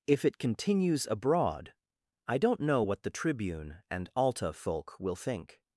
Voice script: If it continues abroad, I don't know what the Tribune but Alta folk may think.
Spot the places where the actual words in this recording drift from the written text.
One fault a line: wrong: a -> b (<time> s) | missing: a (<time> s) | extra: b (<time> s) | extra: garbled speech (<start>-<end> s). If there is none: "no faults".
wrong: but -> and (3.9 s)
wrong: may -> will (5.0 s)